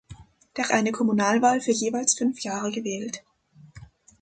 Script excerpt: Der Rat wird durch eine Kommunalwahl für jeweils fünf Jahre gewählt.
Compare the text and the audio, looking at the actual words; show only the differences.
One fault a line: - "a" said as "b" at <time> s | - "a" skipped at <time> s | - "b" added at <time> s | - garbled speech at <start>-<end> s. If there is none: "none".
- "Rat wird durch" skipped at 0.7 s